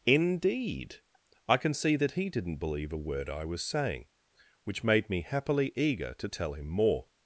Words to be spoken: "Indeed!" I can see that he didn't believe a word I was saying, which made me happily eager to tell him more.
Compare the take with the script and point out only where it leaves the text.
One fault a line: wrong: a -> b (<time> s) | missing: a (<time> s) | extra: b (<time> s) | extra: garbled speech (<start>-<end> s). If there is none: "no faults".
no faults